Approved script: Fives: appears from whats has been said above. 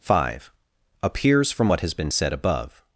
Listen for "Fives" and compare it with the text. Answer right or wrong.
wrong